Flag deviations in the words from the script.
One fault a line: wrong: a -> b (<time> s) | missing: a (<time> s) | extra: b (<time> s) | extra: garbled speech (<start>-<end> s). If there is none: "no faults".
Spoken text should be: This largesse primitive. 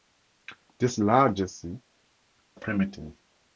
no faults